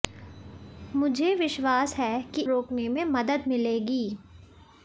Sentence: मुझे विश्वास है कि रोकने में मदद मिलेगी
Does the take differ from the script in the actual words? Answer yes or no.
no